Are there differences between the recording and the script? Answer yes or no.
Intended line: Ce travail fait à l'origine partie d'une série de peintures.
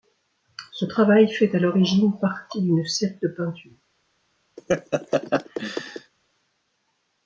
no